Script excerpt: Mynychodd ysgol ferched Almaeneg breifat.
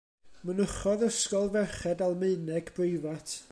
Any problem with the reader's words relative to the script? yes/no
no